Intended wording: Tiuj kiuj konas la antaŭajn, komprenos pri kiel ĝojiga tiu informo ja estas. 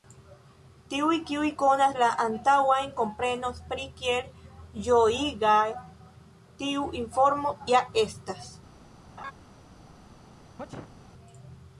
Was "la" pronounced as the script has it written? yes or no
yes